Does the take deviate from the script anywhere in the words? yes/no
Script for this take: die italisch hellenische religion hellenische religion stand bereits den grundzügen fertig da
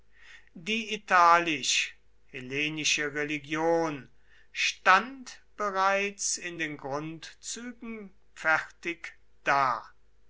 yes